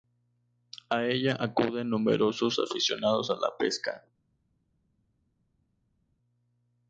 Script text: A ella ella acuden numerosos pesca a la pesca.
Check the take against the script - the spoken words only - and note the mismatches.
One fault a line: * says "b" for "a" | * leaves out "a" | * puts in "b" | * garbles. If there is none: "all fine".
* leaves out "ella"
* says "aficionados" for "pesca"